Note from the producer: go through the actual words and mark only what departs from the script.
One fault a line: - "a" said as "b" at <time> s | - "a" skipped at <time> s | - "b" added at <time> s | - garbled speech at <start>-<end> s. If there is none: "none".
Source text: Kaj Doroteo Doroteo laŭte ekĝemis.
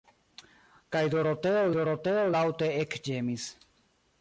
none